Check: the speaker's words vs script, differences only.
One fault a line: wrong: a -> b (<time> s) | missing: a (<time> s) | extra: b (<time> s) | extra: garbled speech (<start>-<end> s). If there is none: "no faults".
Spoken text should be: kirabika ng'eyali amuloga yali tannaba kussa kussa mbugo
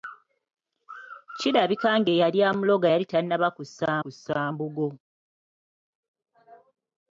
no faults